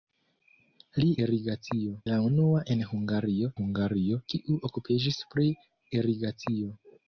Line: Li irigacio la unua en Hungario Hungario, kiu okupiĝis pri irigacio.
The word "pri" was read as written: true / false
true